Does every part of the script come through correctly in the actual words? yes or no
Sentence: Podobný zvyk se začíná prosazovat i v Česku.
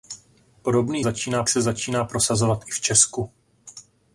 no